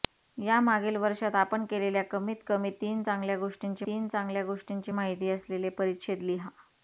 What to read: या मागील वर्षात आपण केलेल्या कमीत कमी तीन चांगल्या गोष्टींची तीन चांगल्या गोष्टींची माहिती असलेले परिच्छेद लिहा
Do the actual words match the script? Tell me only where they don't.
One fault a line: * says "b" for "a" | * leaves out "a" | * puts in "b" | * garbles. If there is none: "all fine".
all fine